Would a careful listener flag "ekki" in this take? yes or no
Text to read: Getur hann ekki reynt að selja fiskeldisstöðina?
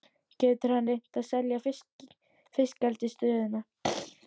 yes